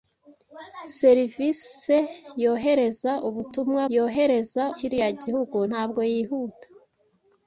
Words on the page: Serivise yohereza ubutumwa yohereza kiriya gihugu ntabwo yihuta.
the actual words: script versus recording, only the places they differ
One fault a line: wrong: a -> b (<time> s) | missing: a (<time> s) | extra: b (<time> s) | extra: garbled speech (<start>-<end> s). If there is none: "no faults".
no faults